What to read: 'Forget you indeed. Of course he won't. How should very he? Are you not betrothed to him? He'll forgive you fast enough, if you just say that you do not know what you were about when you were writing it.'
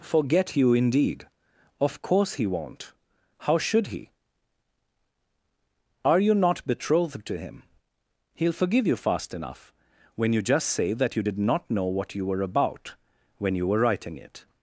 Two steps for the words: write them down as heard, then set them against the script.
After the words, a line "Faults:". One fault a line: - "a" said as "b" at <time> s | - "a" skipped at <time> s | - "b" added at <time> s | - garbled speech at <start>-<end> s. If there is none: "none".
'Forget you indeed. Of course he won't. How should he? Are you not betrothed to him? He'll forgive you fast enough, when you just say that you did not know what you were about when you were writing it.'
Faults:
- "very" skipped at 3.9 s
- "if" said as "when" at 10.2 s
- "do" said as "did" at 11.2 s